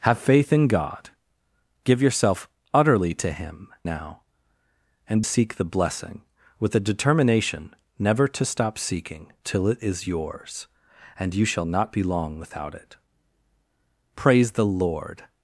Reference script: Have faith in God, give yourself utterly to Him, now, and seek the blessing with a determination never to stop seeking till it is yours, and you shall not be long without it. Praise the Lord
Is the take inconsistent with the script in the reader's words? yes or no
no